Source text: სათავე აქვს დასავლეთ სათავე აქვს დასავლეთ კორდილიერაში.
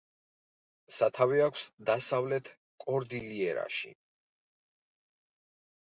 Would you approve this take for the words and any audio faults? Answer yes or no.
no